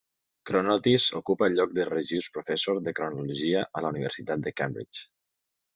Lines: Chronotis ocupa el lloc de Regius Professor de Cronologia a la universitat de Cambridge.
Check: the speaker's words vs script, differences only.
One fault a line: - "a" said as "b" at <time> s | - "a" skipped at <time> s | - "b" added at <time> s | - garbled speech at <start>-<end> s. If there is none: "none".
none